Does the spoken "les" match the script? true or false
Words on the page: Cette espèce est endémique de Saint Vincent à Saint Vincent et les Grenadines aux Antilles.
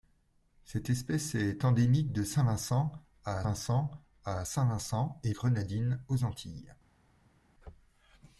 false